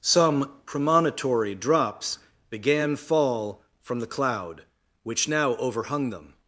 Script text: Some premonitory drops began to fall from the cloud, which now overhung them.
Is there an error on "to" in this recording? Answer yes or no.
yes